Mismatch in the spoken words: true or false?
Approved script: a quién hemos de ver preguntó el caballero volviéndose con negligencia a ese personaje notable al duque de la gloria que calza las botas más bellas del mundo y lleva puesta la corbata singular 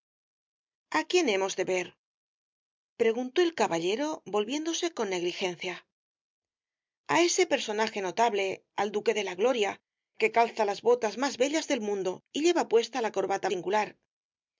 false